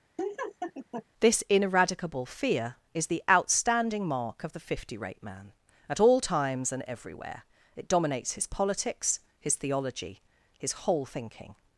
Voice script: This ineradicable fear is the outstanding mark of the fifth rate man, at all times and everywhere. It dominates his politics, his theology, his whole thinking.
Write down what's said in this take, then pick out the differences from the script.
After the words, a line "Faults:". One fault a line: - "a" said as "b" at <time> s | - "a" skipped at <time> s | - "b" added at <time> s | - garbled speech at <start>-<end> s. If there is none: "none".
This ineradicable fear is the outstanding mark of the fifty rate man, at all times and everywhere. It dominates his politics, his theology, his whole thinking.
Faults:
- "fifth" said as "fifty" at 4.6 s